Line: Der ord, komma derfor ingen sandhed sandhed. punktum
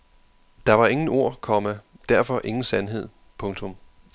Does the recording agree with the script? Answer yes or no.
no